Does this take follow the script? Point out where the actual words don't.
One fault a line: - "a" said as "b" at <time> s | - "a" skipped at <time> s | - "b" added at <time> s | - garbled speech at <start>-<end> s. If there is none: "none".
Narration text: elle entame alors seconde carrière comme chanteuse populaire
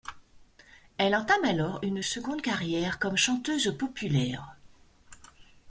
- "une" added at 1.8 s